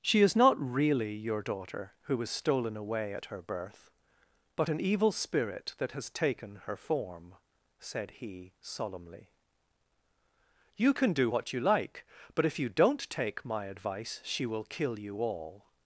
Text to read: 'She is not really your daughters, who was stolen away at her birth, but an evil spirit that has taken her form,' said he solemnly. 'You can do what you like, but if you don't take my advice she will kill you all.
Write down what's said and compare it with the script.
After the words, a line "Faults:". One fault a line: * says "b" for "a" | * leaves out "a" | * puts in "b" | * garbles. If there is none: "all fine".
'She is not really your daughter, who was stolen away at her birth, but an evil spirit that has taken her form,' said he solemnly. 'You can do what you like, but if you don't take my advice she will kill you all.
Faults:
* says "daughter" for "daughters"